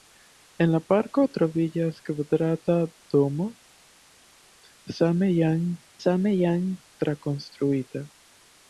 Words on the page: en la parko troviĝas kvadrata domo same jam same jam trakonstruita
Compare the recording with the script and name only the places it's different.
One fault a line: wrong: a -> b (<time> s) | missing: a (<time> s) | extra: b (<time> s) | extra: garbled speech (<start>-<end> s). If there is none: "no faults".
no faults